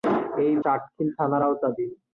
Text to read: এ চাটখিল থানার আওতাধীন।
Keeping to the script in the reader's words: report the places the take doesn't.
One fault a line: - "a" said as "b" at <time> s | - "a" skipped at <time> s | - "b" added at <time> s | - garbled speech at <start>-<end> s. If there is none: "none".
none